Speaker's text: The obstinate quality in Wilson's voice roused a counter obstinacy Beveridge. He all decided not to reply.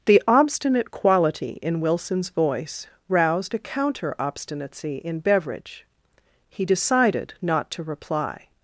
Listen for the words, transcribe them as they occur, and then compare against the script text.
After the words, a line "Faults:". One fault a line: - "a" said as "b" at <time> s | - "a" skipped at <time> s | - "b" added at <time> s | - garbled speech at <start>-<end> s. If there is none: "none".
The obstinate quality in Wilson's voice roused a counter obstinacy in Beveridge. He decided not to reply.
Faults:
- "in" added at 5.0 s
- "all" skipped at 6.7 s